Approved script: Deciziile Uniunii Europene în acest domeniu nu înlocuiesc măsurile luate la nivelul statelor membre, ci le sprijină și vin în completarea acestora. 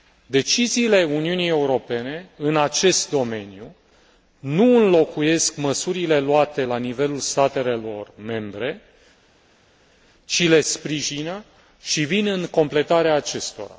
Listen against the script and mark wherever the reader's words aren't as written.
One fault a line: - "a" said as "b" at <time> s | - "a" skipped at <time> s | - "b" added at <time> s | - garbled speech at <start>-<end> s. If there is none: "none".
none